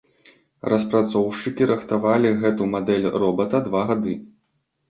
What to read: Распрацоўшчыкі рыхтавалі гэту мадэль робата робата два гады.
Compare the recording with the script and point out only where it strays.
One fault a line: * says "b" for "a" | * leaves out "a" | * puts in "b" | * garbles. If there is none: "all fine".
* leaves out "робата"